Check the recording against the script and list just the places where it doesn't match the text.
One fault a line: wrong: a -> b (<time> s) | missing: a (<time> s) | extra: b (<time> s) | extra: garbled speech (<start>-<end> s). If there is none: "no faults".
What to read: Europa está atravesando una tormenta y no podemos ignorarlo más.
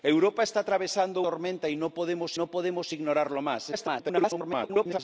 missing: una (1.2 s)
extra: no podemos (2.3 s)
extra: garbled speech (3.7-5.0 s)